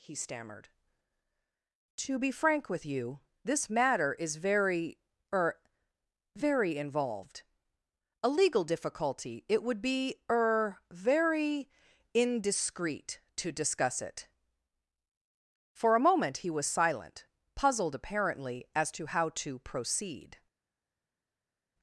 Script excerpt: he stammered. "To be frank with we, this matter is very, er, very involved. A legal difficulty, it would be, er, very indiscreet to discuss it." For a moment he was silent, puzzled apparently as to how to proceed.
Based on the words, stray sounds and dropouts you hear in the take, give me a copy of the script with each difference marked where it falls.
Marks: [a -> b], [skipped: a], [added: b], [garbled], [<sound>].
he stammered. "To be frank with [we, -> you] this matter is very, er, very involved. A legal difficulty, it would be, er, very indiscreet to discuss it." For a moment he was silent, puzzled apparently as to how to proceed.